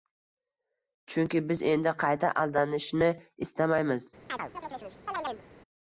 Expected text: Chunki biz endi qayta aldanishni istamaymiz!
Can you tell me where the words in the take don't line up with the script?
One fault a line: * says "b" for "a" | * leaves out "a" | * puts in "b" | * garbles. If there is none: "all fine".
all fine